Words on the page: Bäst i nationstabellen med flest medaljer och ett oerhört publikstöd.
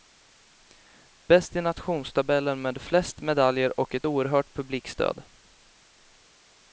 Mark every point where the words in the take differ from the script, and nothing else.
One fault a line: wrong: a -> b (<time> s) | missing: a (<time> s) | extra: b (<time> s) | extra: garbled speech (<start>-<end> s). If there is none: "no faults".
no faults